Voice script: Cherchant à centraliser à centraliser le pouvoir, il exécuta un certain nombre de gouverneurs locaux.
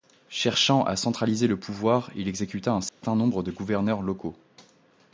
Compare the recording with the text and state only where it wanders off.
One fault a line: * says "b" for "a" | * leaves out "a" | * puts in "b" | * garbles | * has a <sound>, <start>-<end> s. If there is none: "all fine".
* leaves out "à centraliser"
* has a dropout, 2.9-3.0 s